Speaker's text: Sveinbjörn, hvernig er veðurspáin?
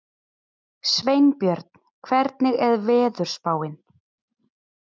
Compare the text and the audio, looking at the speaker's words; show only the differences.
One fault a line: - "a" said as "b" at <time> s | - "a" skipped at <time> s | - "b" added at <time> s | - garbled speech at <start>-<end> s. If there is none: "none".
none